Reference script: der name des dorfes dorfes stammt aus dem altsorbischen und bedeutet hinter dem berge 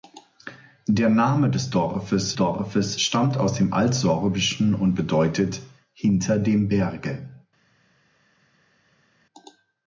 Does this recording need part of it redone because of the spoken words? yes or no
no